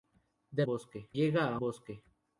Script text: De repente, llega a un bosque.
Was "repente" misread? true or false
true